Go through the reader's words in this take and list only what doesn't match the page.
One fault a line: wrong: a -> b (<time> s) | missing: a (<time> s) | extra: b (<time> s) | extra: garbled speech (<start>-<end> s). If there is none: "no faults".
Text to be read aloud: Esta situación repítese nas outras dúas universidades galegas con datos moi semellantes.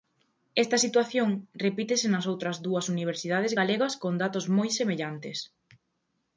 no faults